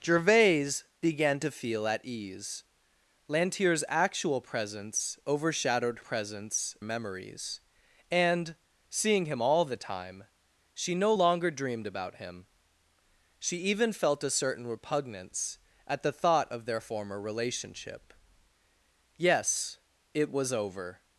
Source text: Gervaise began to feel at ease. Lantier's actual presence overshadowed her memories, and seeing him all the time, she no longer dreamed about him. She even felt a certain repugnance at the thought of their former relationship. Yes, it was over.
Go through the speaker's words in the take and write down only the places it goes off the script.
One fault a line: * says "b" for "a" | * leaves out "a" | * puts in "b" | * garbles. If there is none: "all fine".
* says "presence" for "her"